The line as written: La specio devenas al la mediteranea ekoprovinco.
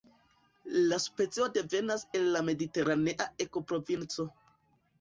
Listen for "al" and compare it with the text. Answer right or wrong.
wrong